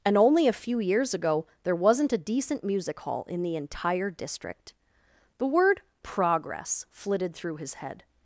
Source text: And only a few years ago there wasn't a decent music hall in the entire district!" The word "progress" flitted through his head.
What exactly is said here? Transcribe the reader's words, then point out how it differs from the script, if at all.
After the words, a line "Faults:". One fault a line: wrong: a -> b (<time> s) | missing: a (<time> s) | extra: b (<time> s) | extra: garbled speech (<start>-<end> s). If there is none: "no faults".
And only a few years ago there wasn't a decent music hall in the entire district!" The word "progress" flitted through his head.
Faults:
no faults